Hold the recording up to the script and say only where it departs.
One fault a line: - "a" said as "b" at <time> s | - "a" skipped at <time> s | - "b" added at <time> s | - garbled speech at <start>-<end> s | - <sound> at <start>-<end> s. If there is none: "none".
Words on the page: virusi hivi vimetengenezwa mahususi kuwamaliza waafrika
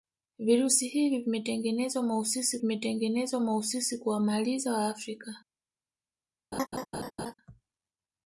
- "vimetengenezwa mahususi" added at 2.6 s
- laugh at 6.5-7.3 s